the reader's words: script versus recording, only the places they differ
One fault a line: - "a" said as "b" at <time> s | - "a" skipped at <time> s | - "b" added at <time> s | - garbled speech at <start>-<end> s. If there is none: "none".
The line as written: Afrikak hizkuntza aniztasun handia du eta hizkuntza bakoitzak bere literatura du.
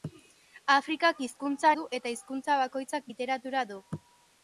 - "aniztasun handia" skipped at 1.7 s
- "bere" skipped at 3.1 s